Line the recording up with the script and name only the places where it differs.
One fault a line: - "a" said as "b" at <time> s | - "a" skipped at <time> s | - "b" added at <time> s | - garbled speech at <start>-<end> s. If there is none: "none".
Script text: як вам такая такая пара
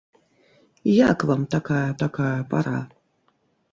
none